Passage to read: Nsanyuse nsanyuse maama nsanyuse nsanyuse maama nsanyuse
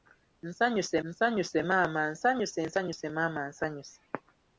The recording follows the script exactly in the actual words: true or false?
true